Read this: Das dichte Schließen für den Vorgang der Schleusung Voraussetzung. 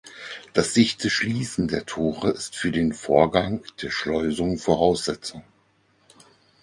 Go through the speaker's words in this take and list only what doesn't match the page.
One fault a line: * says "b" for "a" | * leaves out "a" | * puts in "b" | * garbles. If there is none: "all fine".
* puts in "der Tore ist"